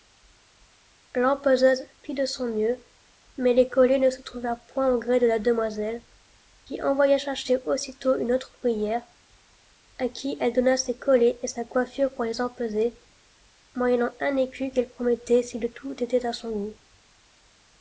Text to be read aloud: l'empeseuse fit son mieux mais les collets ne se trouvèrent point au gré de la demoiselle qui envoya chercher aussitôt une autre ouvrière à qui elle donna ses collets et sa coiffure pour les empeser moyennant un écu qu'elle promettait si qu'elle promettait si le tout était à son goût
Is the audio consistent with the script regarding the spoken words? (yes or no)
no